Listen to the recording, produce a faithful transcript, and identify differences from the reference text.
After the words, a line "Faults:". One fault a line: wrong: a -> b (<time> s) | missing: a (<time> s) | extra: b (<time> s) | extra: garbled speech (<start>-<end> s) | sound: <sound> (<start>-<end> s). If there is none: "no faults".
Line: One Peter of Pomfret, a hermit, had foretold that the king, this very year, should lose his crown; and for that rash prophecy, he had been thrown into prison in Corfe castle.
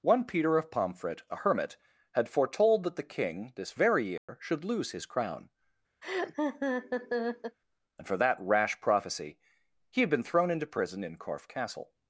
One Peter of Pomfret, a hermit, had foretold that the king, this very year, should lose his crown; and for that rash prophecy, he had been thrown into prison in Corfe castle.
Faults:
sound: dropout (4.2-4.3 s)
sound: laugh (6.0-7.6 s)